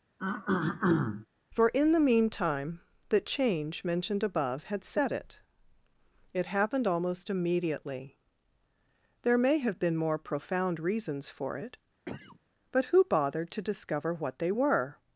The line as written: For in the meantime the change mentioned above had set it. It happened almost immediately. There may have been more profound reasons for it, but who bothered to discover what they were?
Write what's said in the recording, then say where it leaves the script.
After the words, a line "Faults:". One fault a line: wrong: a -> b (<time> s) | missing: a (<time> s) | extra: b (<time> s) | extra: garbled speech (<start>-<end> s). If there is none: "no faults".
For in the meantime the change mentioned above had set it. It happened almost immediately. There may have been more profound reasons for it, but who bothered to discover what they were?
Faults:
no faults